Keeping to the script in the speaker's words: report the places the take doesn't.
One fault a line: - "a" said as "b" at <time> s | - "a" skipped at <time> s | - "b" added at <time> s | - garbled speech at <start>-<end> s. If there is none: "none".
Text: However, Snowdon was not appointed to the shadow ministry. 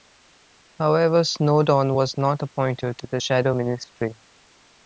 none